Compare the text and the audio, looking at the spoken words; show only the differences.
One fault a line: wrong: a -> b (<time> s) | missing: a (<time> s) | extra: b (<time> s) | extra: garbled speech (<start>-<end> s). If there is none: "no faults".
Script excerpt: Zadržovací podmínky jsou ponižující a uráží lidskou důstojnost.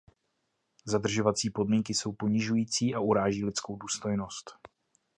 no faults